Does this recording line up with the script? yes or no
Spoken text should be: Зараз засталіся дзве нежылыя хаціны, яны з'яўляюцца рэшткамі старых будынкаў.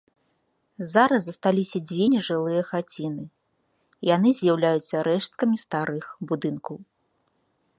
yes